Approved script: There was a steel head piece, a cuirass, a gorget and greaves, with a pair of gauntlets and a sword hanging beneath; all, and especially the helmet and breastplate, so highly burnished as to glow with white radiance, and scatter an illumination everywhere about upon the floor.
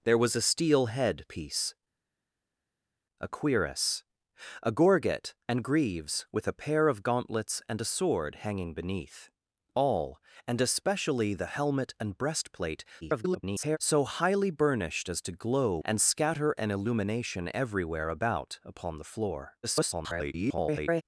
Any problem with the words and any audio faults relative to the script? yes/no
yes